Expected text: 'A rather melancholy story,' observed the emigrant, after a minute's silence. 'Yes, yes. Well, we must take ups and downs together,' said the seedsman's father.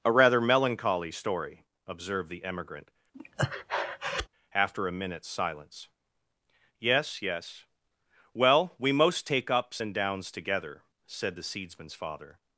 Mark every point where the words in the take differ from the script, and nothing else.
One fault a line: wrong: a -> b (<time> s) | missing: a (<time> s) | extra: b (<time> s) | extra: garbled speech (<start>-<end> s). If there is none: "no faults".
wrong: must -> most (8.9 s)